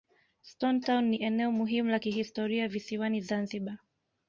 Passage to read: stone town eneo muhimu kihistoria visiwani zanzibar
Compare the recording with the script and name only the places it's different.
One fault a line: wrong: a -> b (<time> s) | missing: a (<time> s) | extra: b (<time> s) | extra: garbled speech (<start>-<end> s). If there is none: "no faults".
extra: ni (1.1 s)
extra: la (1.9 s)